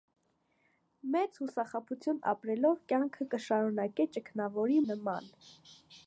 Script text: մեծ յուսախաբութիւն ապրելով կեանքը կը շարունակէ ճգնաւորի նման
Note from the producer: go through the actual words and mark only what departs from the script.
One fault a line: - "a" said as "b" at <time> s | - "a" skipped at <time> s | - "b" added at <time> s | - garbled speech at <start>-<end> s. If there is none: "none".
none